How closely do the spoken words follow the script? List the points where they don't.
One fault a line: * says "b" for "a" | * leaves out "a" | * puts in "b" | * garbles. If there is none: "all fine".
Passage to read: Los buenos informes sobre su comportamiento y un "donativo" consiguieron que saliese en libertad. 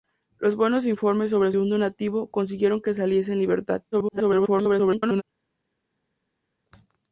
* leaves out "su comportamiento y"
* garbles